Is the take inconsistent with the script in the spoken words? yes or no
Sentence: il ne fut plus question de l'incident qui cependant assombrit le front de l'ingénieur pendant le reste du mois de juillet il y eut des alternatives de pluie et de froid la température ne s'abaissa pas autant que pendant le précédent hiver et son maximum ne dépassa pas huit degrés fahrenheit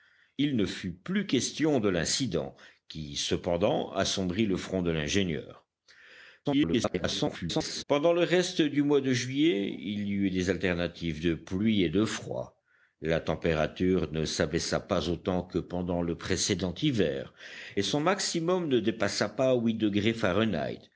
yes